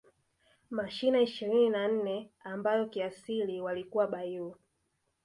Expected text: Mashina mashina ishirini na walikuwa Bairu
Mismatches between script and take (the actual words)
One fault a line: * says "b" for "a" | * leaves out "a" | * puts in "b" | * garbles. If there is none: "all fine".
* leaves out "mashina"
* puts in "nne ambayo kiasili"